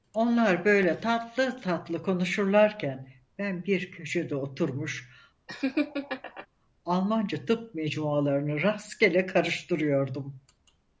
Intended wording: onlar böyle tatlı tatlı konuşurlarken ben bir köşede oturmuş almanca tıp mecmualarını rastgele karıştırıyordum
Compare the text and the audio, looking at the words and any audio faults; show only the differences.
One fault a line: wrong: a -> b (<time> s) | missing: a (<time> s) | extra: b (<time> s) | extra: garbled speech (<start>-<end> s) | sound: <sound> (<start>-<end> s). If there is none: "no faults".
sound: laugh (5.5-6.5 s)